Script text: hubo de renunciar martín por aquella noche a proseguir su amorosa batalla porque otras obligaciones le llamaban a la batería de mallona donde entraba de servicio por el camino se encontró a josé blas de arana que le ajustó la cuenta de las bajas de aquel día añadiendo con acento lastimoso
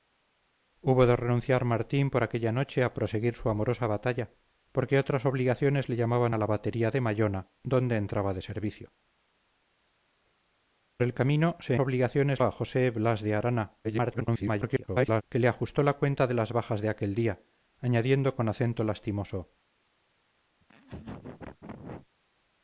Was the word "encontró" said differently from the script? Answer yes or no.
yes